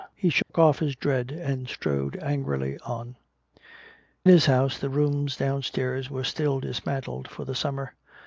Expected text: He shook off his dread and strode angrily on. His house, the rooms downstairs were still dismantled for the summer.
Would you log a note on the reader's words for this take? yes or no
no